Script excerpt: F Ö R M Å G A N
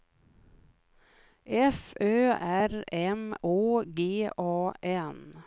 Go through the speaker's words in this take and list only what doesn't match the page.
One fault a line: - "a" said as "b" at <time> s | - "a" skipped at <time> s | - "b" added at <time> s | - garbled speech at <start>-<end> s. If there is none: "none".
none